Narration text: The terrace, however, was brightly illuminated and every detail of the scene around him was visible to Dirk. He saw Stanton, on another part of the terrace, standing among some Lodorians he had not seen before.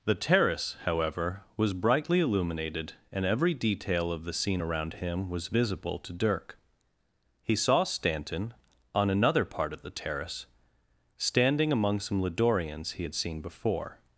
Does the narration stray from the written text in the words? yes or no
yes